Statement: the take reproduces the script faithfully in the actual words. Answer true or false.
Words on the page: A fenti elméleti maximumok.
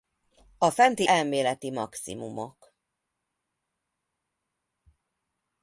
true